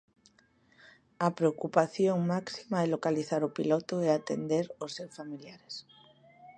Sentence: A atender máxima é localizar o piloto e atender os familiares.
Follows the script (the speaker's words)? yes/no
no